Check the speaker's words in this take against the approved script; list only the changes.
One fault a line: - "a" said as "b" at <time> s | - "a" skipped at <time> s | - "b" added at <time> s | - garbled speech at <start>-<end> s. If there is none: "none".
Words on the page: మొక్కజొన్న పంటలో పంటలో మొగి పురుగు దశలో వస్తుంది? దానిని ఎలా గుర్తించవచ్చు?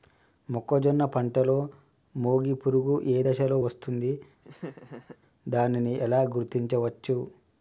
- "పంటలో" skipped at 1.6 s
- "ఏ" added at 3.1 s